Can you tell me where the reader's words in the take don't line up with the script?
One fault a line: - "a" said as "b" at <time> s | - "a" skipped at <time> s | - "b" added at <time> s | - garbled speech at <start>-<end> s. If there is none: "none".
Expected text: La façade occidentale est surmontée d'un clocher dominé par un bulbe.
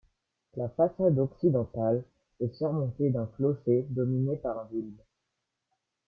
none